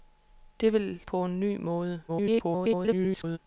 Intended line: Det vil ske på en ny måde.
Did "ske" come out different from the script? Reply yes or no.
yes